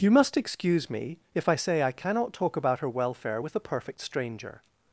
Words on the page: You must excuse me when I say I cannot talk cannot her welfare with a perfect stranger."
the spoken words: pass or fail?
fail